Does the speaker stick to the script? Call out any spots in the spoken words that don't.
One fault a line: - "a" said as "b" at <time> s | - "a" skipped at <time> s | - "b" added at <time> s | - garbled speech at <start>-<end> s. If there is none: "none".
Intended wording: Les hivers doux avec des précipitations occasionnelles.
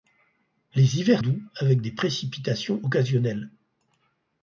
none